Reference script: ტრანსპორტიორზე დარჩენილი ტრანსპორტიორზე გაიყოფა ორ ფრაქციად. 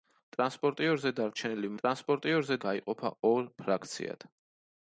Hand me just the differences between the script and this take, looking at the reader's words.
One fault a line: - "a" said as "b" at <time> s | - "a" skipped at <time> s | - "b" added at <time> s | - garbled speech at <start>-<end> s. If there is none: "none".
none